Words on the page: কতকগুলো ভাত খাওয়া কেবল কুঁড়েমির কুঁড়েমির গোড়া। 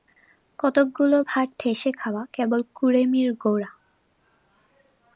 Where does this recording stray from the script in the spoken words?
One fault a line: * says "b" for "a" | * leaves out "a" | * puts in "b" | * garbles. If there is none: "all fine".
* puts in "ঠেসে"
* leaves out "কুঁড়েমির"